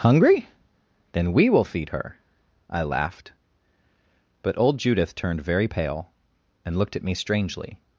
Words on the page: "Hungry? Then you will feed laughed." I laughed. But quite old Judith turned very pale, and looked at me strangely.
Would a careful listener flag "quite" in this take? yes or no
yes